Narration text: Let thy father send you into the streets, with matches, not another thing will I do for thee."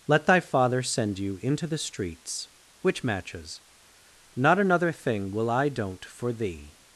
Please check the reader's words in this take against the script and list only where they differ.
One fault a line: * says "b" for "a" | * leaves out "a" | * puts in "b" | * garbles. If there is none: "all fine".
* says "which" for "with"
* says "don't" for "do"